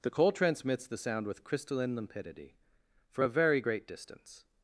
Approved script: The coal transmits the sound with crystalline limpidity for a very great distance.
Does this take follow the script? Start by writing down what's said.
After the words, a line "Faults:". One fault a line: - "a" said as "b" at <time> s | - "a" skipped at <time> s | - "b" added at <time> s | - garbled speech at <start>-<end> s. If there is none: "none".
The coal transmits the sound with crystalline limpidity for a very great distance.
Faults:
none